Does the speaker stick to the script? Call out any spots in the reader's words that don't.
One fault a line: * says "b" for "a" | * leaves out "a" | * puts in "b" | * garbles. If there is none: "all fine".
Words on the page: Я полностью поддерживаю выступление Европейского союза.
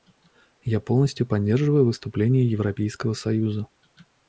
all fine